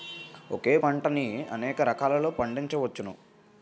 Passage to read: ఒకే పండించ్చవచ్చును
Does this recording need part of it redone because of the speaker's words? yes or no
yes